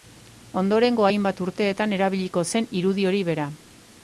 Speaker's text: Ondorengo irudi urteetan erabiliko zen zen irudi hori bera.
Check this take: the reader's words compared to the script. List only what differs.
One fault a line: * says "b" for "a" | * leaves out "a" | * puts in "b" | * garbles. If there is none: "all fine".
* says "hainbat" for "irudi"
* leaves out "zen"